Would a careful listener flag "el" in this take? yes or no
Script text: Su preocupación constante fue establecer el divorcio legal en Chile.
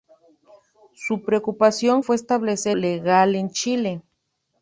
yes